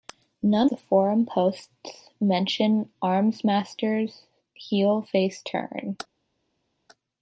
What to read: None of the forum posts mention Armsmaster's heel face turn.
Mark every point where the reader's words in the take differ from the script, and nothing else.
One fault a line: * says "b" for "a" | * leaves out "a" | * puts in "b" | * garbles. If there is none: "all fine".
* leaves out "of"